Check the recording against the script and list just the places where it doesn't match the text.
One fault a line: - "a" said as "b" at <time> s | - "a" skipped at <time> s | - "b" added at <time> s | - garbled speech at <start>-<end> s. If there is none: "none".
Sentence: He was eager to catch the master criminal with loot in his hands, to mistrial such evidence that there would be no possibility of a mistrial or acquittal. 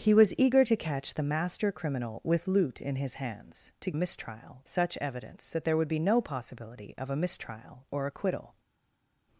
none